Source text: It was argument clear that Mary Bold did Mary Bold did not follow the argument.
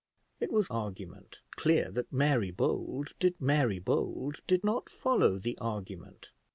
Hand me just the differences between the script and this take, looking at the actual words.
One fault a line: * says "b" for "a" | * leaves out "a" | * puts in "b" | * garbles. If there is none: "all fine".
all fine